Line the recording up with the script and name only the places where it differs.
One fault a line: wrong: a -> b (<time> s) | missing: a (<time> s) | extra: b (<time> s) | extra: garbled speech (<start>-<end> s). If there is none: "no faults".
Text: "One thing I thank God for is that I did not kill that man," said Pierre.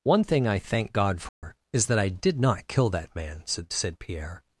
extra: said (3.7 s)